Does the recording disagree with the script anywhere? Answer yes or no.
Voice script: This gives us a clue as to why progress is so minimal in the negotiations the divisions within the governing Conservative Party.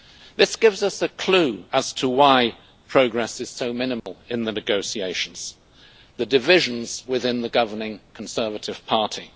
no